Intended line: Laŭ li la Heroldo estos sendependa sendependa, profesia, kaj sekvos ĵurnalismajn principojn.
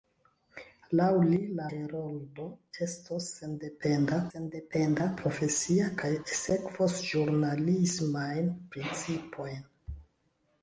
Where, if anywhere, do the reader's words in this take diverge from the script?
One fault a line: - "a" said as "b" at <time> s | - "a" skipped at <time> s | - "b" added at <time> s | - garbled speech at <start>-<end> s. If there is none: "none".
none